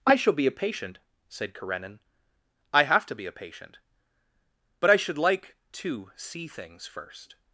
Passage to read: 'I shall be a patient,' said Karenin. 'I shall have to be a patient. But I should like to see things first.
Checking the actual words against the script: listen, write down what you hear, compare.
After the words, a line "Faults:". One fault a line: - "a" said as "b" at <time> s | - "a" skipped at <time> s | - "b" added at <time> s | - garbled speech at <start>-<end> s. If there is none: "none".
'I shall be a patient,' said Karenin. 'I have to be a patient. But I should like to see things first.
Faults:
- "shall" skipped at 2.8 s